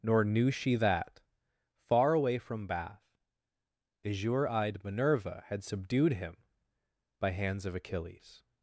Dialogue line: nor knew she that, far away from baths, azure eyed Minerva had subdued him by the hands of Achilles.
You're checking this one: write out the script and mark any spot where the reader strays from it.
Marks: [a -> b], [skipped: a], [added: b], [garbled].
nor knew she that, far away from [baths, -> bath] azure eyed Minerva had subdued him by [skipped: the] hands of Achilles.